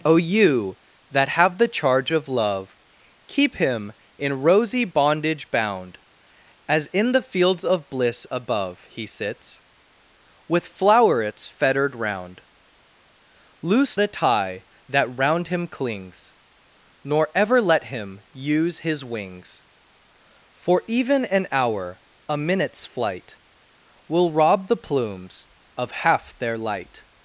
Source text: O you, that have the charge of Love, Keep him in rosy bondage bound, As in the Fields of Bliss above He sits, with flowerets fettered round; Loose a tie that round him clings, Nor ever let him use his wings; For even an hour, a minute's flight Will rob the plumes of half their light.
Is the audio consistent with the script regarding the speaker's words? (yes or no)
yes